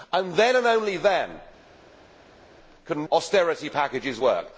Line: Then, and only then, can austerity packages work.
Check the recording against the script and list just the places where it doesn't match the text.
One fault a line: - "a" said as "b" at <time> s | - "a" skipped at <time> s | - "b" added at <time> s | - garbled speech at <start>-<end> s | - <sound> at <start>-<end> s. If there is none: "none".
none